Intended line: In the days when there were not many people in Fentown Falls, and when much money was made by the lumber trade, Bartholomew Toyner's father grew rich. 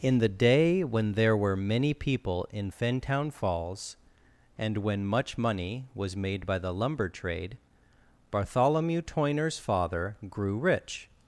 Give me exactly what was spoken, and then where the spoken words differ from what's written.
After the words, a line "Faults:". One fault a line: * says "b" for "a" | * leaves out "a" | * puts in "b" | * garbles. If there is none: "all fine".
In the day when there were many people in Fentown Falls, and when much money was made by the lumber trade, Bartholomew Toyner's father grew rich.
Faults:
* says "day" for "days"
* leaves out "not"